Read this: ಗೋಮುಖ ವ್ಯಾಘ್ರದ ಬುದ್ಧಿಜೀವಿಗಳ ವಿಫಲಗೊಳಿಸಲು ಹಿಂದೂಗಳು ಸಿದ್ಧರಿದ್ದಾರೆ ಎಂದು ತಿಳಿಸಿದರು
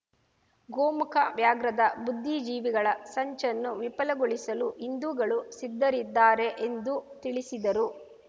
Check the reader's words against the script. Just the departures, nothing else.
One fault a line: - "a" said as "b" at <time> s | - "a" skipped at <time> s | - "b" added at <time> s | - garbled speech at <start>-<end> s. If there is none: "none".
- "ಸಂಚನ್ನು" added at 3.1 s